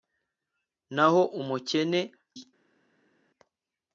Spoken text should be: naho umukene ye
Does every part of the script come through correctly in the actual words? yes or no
yes